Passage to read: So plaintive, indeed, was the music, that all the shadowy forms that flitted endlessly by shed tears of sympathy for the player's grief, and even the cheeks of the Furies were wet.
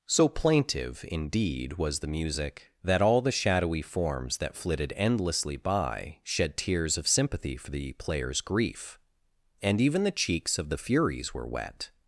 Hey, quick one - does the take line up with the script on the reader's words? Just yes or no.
yes